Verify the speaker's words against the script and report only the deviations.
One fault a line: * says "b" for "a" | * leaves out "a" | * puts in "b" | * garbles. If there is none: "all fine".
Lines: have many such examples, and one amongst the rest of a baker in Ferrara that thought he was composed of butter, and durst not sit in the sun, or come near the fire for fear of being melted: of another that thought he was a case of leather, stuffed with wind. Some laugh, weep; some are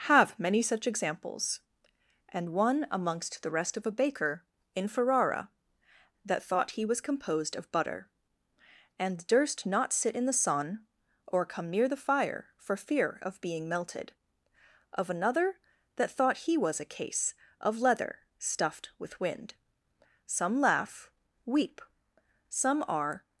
all fine